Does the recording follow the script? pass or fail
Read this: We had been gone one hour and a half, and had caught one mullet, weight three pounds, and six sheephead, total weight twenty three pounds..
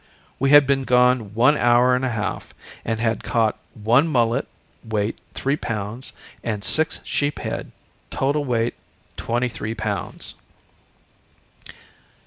pass